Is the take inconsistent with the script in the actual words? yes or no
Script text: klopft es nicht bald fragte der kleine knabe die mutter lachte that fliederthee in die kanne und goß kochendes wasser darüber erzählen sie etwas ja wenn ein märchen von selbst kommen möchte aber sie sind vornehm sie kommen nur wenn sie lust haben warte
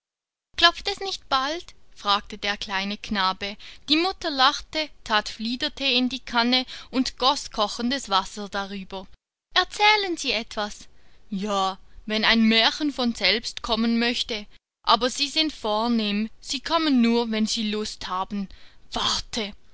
no